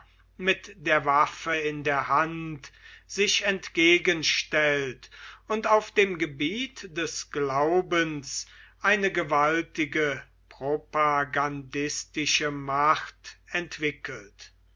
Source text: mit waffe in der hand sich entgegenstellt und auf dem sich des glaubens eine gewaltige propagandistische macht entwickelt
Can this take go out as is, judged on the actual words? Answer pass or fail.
fail